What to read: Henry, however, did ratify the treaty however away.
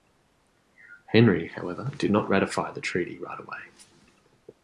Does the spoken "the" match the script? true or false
true